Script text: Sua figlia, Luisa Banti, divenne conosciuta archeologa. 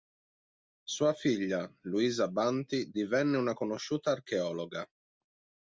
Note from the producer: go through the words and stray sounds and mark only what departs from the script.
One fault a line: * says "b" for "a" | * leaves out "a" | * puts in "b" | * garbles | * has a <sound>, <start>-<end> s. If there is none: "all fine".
* puts in "una"